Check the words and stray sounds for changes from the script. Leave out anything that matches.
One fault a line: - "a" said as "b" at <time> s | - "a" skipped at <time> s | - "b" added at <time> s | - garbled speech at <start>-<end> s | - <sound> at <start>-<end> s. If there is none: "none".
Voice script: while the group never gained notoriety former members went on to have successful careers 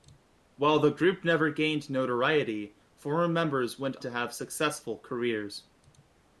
- "on" skipped at 4.0 s